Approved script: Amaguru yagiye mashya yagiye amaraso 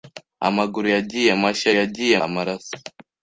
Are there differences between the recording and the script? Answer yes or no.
no